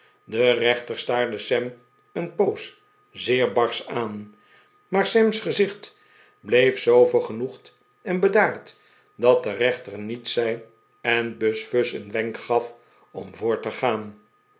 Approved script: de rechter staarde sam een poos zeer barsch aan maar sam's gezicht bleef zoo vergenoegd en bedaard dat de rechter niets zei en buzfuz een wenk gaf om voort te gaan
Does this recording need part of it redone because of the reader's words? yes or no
no